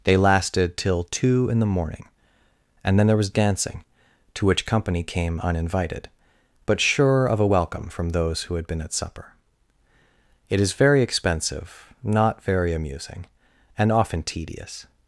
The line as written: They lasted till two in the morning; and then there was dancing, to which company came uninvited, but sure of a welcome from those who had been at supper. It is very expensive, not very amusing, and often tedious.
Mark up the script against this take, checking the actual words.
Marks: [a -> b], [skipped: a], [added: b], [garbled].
They lasted till two in the morning; and then there was dancing, to which company came uninvited, but sure of a welcome from those who had been at supper. It is very expensive, not very amusing, and often tedious.